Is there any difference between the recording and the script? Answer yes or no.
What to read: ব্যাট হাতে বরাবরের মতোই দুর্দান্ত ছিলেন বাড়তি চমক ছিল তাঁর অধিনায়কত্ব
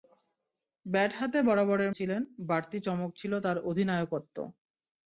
yes